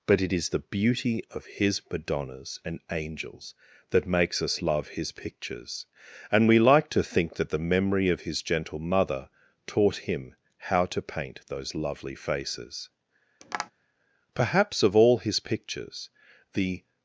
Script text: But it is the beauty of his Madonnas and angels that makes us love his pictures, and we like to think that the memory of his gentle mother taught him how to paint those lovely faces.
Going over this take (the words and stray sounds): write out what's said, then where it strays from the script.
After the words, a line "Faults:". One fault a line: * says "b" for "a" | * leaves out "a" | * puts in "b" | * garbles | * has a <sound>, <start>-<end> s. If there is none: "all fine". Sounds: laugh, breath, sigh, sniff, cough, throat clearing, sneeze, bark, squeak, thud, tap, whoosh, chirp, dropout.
But it is the beauty of his Madonnas and angels that makes us love his pictures, and we like to think that the memory of his gentle mother taught him how to paint those lovely faces. Perhaps of all his pictures the
Faults:
* has a tap, 13.4-13.7 s
* puts in "Perhaps of all his pictures the"